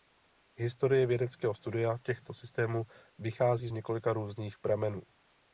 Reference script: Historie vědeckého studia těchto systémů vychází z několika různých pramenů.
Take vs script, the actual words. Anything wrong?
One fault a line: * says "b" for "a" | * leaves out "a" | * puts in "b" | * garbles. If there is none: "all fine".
all fine